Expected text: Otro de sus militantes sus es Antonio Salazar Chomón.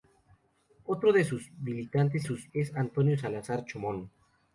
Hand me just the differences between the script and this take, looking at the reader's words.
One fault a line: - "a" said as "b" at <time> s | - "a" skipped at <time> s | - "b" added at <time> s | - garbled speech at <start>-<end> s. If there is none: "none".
none